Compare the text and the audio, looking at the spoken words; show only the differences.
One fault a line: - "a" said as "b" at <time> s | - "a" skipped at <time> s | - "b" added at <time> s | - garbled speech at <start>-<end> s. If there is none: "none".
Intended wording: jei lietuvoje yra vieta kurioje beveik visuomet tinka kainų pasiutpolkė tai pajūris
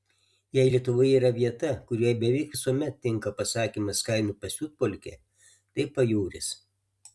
- "pasakymas" added at 3.4 s